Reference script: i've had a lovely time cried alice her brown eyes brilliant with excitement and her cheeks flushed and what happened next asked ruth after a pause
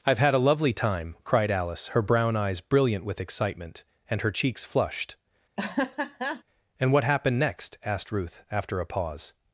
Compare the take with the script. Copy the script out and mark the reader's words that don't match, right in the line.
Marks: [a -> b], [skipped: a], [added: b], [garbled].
i've had a lovely time cried alice her brown eyes brilliant with excitement and her cheeks flushed and what happened next asked ruth after a pause